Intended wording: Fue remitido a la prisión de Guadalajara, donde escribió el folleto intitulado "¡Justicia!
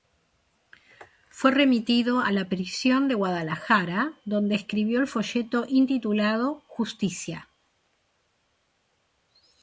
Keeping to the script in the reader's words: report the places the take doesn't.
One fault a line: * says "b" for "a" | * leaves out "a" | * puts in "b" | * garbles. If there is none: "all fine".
all fine